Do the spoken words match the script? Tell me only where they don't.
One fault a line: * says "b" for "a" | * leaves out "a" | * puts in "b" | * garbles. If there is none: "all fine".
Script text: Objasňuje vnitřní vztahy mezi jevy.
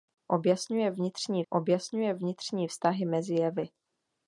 * puts in "objasňuje vnitřní"